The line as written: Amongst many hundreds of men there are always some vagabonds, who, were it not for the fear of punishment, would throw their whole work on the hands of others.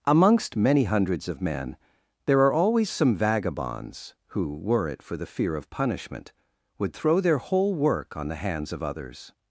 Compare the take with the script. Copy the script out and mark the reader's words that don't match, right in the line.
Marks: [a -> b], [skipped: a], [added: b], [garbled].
Amongst many hundreds of men there are always some vagabonds, who, were it [skipped: not] for the fear of punishment, would throw their whole work on the hands of others.